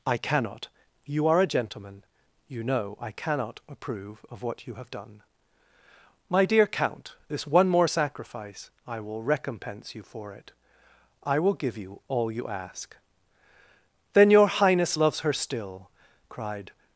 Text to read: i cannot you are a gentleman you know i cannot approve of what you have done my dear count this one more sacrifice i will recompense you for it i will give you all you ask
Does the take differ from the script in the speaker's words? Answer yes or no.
yes